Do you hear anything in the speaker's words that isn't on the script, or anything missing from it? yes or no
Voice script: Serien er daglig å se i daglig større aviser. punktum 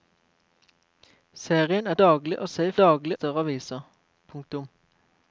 no